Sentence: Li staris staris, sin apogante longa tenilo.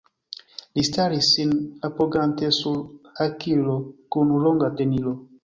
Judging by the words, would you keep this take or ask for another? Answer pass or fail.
fail